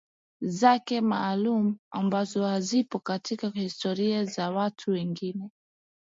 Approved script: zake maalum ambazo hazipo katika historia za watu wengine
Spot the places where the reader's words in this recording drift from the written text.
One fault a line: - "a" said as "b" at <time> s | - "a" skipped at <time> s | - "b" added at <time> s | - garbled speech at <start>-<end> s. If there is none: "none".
none